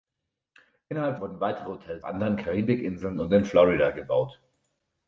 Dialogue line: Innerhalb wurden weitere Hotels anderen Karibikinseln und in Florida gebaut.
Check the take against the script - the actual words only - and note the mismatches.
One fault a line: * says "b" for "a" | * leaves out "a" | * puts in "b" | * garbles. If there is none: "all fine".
all fine